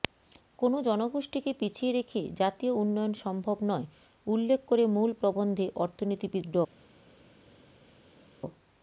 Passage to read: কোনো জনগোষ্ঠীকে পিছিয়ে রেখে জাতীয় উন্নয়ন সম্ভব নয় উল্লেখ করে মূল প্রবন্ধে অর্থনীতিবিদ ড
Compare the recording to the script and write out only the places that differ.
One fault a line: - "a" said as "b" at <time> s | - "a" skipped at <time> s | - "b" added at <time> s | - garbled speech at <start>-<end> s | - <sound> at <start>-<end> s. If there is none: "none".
none